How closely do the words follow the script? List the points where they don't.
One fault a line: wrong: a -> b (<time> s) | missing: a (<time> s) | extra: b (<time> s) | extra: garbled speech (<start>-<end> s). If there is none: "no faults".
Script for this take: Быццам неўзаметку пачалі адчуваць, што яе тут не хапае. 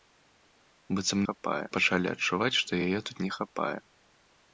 wrong: неўзаметку -> хапае (1.3 s)